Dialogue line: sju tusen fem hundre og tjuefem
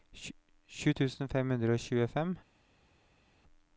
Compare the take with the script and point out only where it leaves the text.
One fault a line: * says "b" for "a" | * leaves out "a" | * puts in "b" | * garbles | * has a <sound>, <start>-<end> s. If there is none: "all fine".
all fine